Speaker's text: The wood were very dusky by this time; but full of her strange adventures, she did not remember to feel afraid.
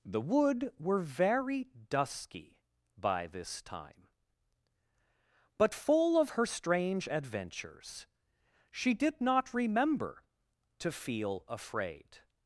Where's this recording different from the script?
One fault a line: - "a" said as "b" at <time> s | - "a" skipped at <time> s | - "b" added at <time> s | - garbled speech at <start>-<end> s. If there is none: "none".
none